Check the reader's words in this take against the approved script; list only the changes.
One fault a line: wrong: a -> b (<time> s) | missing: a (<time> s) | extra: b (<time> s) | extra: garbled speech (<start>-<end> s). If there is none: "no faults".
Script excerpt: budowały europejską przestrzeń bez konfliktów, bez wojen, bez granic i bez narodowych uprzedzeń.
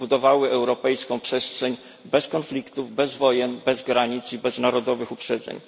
no faults